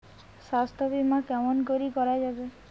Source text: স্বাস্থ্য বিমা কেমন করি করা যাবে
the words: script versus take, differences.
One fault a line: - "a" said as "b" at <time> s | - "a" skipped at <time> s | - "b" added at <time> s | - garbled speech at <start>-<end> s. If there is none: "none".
none